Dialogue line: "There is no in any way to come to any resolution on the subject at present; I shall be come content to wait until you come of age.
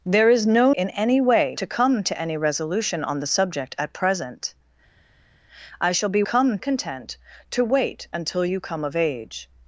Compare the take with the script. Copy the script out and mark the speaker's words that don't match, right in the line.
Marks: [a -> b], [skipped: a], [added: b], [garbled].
"There is no in any way to come to any resolution on the subject at present; I shall be come content to wait until you come of age.